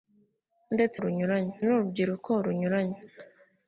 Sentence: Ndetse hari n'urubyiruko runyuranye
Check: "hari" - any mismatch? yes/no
yes